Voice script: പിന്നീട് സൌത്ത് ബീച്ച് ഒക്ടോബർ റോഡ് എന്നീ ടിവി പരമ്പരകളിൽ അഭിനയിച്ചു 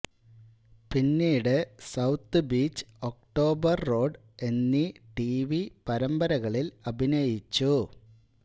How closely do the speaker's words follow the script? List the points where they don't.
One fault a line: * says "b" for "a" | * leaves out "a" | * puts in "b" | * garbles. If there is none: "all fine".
all fine